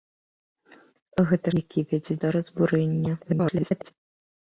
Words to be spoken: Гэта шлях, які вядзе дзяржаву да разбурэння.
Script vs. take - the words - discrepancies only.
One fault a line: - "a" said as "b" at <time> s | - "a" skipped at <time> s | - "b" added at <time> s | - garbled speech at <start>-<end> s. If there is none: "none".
- "шлях" skipped at 1.5 s
- "дзяржаву" skipped at 2.2 s
- garbled speech at 3.2-3.9 s